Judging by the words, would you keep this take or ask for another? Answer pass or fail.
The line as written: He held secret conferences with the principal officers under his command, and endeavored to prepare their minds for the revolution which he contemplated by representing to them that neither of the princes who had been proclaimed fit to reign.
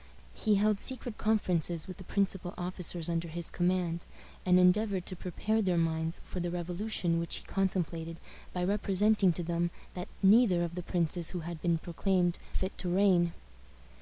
pass